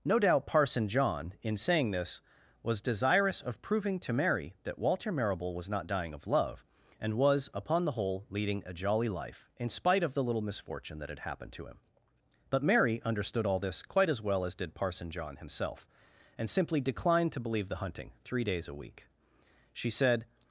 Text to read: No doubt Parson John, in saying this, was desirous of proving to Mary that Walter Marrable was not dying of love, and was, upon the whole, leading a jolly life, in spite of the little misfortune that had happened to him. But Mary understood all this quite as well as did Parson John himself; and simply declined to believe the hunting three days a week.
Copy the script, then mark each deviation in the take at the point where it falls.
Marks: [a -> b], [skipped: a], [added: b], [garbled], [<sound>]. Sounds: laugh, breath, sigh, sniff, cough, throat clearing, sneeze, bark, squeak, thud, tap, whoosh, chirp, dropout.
No doubt Parson John, in saying this, was desirous of proving to Mary that Walter Marrable was not dying of love, and was, upon the whole, leading a jolly life, in spite of the little misfortune that had happened to him. But Mary understood all this quite as well as did Parson John himself; and simply declined to believe the hunting three days a week. [added: She said]